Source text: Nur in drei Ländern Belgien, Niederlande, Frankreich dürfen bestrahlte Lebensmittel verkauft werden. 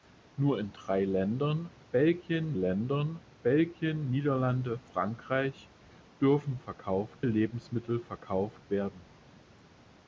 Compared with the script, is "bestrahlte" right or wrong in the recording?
wrong